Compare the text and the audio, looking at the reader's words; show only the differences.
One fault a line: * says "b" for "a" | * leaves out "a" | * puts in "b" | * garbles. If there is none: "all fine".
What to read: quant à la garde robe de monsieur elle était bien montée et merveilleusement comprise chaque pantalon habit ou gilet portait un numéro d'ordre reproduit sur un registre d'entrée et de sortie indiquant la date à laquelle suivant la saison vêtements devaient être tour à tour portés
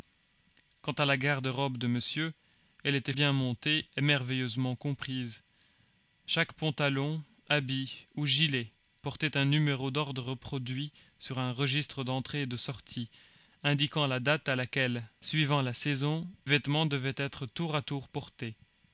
all fine